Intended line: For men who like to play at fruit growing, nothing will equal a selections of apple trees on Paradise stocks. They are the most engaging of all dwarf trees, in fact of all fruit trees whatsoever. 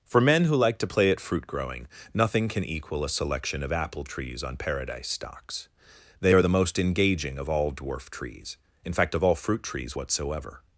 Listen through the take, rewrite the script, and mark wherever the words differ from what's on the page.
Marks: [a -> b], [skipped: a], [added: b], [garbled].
For men who like to play at fruit growing, nothing [will -> can] equal a [selections -> selection] of apple trees on Paradise stocks. They are the most engaging of all dwarf trees, in fact of all fruit trees whatsoever.